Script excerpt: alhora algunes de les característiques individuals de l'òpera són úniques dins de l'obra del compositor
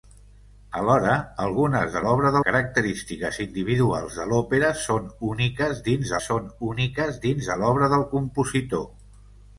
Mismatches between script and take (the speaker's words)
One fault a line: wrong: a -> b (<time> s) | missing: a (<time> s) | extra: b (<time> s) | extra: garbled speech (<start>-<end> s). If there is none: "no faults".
wrong: les -> l'obra (2.1 s)
extra: són úniques dins (6.2 s)